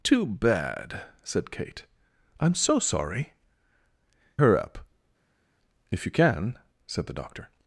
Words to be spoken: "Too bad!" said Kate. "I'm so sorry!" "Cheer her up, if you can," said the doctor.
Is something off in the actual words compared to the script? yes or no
yes